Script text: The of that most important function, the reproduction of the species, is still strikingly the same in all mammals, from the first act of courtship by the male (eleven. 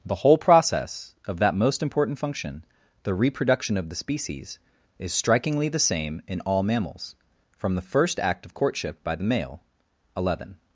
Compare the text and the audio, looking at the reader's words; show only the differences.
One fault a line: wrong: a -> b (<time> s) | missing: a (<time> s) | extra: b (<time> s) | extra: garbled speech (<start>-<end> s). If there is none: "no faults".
extra: whole process (0.2 s)
missing: still (5.1 s)